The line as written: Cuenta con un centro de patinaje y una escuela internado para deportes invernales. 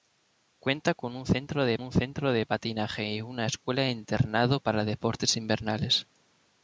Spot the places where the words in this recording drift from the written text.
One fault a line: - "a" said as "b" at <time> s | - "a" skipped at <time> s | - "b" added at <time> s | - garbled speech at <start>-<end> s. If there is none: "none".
- "un centro de" added at 1.8 s